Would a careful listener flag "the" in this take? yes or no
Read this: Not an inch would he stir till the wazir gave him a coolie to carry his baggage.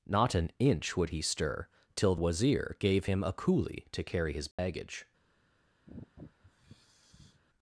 yes